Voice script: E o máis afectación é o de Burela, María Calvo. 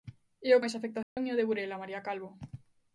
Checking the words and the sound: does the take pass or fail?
fail